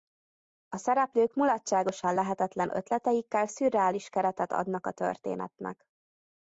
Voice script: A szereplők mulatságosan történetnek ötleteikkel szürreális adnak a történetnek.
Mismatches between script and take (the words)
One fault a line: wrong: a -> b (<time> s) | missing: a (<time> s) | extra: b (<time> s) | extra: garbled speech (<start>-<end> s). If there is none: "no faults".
wrong: történetnek -> lehetetlen (2.1 s)
extra: keretet (4.1 s)